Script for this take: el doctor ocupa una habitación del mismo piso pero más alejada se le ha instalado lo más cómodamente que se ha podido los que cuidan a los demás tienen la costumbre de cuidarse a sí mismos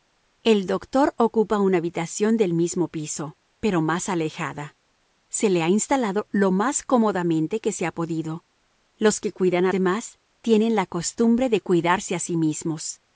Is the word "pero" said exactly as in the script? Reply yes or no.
yes